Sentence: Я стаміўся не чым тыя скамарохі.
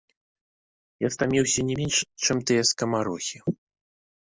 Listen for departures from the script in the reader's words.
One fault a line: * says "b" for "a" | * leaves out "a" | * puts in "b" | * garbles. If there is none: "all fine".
* puts in "менш"